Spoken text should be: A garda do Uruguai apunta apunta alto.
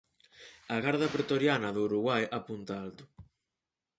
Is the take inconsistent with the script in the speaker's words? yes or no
yes